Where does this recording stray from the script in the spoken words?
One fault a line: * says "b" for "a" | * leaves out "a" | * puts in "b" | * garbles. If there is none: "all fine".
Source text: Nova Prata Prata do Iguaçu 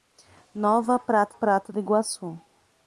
all fine